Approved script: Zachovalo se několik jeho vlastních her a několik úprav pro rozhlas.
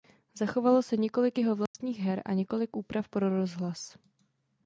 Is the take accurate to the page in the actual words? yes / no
yes